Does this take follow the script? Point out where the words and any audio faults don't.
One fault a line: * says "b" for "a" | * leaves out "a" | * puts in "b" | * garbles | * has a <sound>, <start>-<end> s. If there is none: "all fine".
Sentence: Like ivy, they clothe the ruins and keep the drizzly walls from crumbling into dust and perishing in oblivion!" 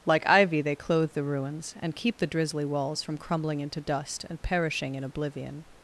all fine